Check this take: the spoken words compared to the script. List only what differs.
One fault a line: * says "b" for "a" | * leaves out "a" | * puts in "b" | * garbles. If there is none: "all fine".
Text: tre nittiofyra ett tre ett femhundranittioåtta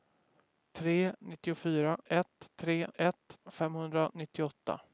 all fine